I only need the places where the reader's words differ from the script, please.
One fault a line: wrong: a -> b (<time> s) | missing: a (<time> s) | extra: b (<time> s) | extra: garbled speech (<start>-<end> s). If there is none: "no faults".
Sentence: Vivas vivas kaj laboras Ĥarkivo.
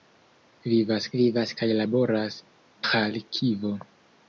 no faults